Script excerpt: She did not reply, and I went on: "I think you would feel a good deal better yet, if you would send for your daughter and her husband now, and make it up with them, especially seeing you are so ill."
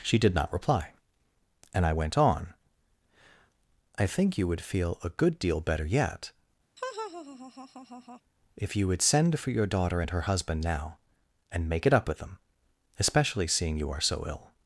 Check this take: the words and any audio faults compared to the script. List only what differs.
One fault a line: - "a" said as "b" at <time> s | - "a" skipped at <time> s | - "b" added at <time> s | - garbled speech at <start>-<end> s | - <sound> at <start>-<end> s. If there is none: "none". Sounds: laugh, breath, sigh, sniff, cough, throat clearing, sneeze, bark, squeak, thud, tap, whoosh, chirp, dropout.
- laugh at 6.8-8.2 s